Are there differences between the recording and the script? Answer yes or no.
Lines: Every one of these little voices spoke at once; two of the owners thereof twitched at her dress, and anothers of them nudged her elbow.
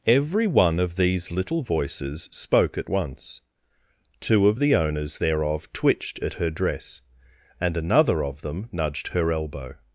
yes